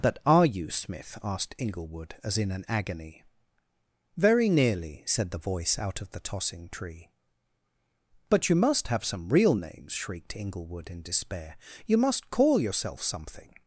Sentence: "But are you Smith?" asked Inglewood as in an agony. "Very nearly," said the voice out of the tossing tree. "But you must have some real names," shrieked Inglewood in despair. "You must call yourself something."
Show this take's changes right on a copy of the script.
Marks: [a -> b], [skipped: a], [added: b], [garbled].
["But -> That] are you Smith?" asked Inglewood as in an agony. "Very nearly," said the voice out of the tossing tree. "But you must have some real names," shrieked Inglewood in despair. "You must call yourself something."